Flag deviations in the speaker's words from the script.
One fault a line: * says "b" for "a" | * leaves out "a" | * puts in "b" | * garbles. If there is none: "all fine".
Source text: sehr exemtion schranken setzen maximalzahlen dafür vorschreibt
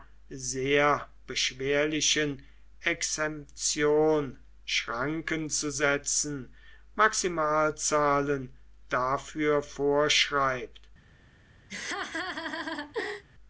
* puts in "beschwerlichen"
* puts in "zu"